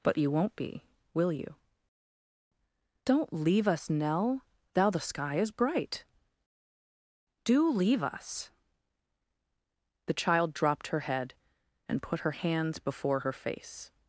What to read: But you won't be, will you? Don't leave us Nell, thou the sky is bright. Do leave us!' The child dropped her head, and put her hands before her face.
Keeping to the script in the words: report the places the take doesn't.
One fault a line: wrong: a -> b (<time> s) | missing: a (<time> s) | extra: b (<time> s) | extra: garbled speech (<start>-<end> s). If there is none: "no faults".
no faults